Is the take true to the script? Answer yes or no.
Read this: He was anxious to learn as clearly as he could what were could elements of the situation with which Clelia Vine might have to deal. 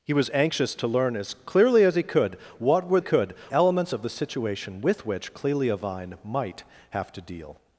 yes